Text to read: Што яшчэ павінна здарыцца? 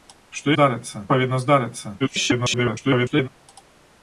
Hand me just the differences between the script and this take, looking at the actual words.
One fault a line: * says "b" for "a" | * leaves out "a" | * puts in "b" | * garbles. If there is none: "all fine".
* says "здарыцца" for "яшчэ"
* garbles